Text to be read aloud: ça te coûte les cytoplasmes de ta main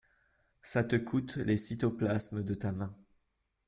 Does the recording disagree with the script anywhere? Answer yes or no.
no